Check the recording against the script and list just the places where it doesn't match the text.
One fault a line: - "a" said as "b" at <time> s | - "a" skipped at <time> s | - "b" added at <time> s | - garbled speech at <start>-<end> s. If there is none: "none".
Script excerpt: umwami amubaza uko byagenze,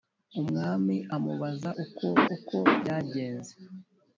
- "uko" added at 2.3 s